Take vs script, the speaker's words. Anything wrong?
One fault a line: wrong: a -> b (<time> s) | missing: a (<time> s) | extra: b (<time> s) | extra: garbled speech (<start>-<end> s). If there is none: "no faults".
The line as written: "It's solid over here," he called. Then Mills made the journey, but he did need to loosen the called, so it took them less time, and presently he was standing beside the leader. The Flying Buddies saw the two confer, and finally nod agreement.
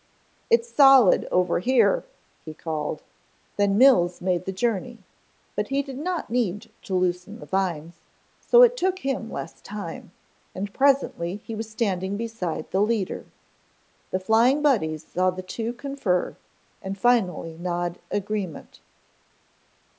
extra: not (6.0 s)
wrong: called -> vines (7.5 s)
wrong: them -> him (9.1 s)